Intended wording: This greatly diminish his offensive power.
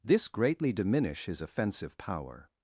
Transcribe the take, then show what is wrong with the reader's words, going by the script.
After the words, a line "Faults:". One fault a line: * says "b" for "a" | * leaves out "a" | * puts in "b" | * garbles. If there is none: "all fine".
This greatly diminish his offensive power.
Faults:
all fine